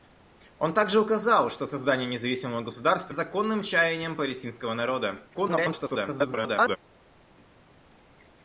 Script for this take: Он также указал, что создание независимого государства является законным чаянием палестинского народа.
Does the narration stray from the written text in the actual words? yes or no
yes